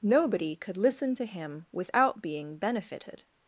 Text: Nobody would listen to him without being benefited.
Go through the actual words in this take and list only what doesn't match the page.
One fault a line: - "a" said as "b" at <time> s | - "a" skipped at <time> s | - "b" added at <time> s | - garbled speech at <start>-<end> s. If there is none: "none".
- "would" said as "could" at 0.6 s